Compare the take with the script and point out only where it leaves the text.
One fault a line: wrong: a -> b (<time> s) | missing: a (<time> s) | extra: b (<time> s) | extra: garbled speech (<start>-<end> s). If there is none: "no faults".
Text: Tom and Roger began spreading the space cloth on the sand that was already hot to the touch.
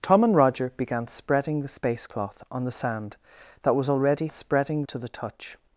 wrong: hot -> spreading (4.3 s)